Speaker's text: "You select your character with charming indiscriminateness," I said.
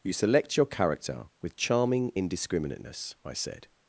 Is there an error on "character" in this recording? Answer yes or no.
no